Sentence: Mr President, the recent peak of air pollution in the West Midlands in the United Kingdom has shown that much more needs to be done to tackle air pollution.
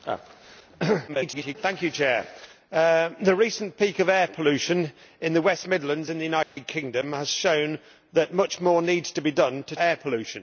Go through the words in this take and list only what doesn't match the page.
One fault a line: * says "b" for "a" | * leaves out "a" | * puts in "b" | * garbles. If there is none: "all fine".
* garbles
* leaves out "tackle"